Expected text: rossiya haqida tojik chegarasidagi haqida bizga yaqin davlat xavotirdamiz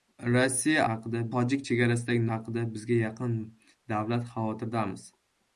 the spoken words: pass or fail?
pass